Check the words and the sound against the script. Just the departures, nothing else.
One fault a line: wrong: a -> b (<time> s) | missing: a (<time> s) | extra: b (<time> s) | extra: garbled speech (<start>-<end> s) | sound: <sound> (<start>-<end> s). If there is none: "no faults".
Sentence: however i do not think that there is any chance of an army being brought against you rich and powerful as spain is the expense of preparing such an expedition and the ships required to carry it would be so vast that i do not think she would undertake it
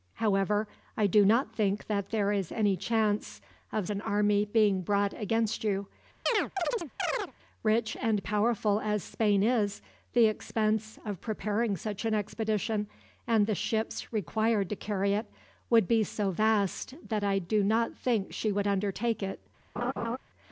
sound: chirp (6.3-7.3 s)
sound: laugh (19.8-20.2 s)